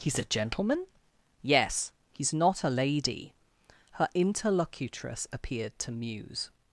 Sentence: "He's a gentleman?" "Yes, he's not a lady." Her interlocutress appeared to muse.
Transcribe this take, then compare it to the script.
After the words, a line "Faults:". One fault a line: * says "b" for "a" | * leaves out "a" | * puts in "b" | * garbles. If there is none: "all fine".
"He's a gentleman?" "Yes, he's not a lady." Her interlocutress appeared to muse.
Faults:
all fine